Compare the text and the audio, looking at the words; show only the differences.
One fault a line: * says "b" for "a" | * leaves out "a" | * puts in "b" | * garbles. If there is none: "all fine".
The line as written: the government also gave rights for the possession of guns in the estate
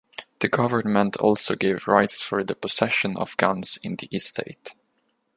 all fine